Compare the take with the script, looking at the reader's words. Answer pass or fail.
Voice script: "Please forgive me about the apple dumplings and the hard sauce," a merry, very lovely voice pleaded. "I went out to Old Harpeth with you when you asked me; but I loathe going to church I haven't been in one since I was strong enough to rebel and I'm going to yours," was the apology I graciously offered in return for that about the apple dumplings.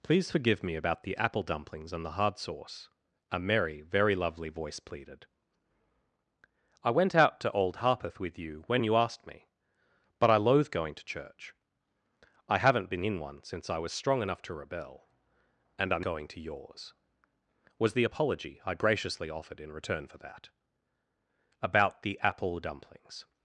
pass